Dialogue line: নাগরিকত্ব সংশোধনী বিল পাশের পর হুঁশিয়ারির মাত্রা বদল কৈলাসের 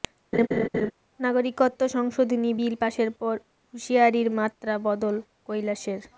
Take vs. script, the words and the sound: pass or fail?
fail